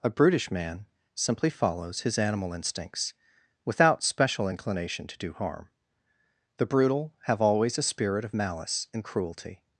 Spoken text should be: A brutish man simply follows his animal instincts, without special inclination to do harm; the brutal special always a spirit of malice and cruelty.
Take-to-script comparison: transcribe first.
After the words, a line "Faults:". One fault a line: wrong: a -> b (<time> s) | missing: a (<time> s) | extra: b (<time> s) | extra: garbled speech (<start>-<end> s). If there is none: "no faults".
A brutish man simply follows his animal instincts, without special inclination to do harm; the brutal have always a spirit of malice and cruelty.
Faults:
wrong: special -> have (7.2 s)